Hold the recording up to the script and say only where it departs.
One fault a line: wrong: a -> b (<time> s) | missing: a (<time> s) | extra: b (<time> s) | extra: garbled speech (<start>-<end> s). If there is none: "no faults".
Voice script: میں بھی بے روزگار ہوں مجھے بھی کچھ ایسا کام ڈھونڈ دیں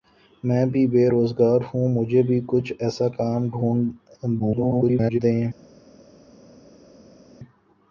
extra: garbled speech (4.4-5.2 s)